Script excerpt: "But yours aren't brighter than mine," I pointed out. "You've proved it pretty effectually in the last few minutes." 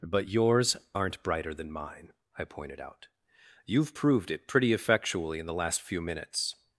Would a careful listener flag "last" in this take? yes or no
no